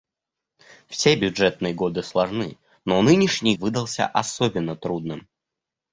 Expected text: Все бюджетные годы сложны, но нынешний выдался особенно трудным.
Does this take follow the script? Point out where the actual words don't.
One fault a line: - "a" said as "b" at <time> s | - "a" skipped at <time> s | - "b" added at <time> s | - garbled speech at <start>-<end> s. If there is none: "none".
none